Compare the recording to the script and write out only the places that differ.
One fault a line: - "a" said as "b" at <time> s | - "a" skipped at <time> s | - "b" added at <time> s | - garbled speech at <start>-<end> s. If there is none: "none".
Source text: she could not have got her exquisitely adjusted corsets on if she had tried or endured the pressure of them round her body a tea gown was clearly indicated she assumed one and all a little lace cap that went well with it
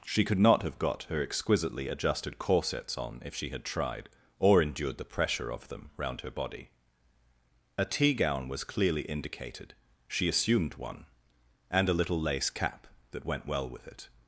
- "all" skipped at 11.9 s